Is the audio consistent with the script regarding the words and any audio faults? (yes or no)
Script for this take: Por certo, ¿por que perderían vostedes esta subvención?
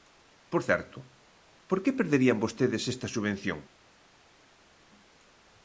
yes